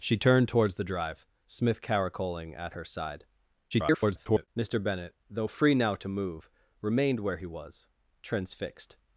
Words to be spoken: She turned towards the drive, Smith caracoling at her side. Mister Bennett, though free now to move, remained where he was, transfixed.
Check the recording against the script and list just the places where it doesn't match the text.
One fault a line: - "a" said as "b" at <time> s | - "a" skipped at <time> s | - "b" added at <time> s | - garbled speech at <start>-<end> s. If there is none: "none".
- garbled speech at 3.7-4.5 s